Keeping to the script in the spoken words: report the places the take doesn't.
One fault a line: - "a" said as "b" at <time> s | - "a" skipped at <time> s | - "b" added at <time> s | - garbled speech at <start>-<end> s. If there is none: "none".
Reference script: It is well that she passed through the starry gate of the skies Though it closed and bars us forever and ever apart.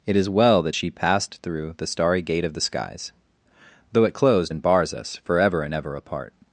none